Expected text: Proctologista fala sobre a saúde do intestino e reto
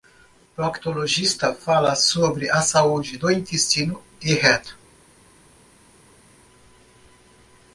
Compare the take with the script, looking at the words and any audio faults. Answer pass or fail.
pass